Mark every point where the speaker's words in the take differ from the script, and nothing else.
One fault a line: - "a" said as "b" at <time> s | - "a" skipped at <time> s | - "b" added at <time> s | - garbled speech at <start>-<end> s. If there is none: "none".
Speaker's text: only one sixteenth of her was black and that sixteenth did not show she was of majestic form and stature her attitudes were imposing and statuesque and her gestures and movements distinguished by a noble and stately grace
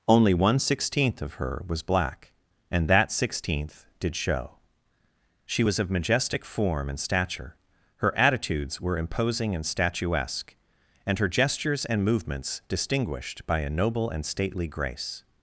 - "not" skipped at 4.2 s